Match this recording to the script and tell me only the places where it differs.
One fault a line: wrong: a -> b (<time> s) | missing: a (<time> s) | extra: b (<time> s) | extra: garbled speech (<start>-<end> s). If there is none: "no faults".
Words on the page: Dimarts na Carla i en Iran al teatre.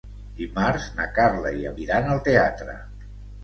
no faults